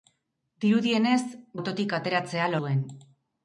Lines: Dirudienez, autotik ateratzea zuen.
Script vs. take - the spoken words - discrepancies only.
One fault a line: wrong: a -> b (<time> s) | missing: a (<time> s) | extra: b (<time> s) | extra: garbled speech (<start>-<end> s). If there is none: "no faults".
no faults